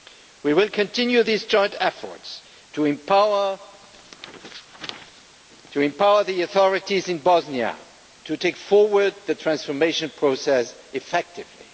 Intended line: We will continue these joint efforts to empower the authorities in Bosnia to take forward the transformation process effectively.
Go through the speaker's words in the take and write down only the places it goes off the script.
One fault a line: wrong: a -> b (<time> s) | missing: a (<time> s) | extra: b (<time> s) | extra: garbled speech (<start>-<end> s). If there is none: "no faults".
no faults